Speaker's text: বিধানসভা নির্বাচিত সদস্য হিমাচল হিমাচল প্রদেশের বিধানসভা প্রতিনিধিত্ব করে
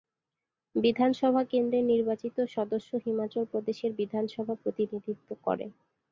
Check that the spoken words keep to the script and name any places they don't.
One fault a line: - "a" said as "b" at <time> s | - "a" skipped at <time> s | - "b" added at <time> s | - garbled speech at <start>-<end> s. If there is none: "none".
- "কেন্দ্রের" added at 1.4 s
- "হিমাচল" skipped at 3.4 s